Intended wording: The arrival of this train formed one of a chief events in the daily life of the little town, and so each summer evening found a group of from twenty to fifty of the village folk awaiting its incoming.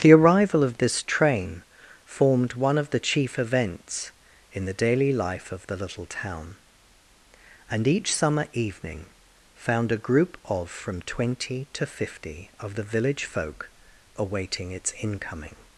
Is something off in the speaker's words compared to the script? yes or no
yes